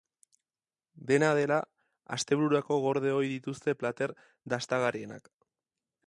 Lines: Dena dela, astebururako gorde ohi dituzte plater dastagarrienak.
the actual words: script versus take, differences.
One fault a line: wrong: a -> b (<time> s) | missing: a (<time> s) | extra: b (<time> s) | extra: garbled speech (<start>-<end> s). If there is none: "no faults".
no faults